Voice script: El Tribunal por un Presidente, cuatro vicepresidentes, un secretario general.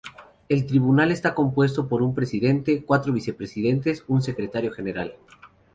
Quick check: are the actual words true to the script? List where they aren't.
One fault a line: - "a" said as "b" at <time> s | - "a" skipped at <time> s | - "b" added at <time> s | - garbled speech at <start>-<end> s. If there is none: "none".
- "está compuesto" added at 1.1 s